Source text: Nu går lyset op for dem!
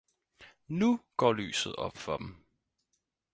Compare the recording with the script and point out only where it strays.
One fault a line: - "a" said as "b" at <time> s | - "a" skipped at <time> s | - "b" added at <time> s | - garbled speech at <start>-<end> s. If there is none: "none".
none